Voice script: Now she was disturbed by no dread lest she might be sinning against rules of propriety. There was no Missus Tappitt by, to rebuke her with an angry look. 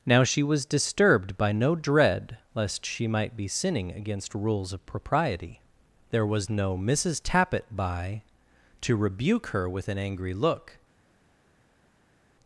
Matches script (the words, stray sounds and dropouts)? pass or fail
pass